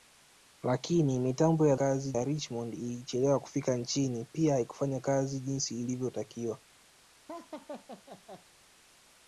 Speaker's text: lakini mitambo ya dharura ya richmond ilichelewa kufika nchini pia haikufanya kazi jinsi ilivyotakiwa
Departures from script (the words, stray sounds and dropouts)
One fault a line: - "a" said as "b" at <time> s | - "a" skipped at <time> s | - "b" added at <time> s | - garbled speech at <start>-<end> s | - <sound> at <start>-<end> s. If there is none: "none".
- "dharura" said as "kazi" at 1.7 s
- laugh at 7.3-8.4 s